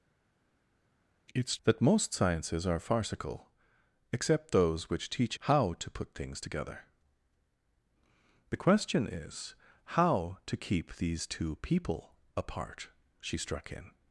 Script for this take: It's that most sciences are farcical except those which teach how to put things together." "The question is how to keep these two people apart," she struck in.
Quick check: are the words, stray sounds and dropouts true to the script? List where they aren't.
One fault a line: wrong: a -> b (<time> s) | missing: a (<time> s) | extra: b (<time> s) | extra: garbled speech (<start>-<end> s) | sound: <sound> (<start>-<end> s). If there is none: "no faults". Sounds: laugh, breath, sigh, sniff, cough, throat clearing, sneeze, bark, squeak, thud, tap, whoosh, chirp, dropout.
no faults